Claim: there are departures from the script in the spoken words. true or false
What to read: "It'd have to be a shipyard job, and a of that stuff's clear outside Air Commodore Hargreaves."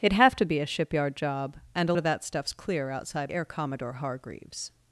false